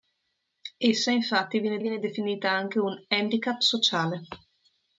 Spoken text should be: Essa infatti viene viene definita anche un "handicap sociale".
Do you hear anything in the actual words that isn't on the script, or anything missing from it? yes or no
no